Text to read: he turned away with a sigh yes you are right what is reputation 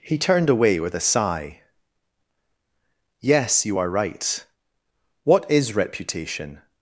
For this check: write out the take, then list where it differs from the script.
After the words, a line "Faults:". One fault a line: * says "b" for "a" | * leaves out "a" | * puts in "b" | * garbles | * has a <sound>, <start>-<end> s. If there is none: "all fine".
he turned away with a sigh yes you are right what is reputation
Faults:
all fine